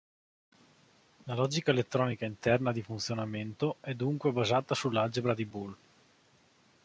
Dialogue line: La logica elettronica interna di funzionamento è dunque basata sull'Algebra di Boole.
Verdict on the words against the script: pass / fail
pass